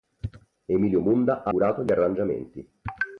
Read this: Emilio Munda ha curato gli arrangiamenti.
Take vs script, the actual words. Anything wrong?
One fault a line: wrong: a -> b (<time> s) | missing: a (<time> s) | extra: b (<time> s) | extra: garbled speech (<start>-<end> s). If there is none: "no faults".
no faults